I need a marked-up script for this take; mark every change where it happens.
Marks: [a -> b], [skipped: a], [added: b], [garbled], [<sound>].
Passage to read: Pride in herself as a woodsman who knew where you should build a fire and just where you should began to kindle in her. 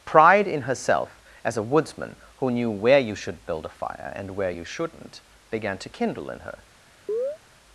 Pride in herself as a woodsman who knew where you should build a fire and [skipped: just] where you [should -> shouldn't] began to kindle in her. [chirp]